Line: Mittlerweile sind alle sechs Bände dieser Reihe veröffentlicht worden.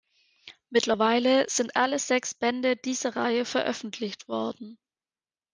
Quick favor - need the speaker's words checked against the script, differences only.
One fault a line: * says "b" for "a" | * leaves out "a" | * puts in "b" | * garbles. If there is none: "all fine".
all fine